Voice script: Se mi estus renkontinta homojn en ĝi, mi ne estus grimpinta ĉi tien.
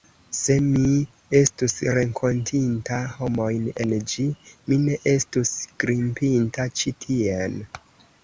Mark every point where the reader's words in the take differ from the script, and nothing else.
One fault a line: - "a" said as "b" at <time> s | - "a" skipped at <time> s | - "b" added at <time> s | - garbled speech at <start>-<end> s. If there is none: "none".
none